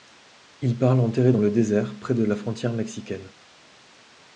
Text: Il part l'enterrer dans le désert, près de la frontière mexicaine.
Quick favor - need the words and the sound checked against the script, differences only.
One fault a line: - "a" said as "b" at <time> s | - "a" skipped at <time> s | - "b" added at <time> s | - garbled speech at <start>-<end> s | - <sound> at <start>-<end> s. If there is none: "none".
none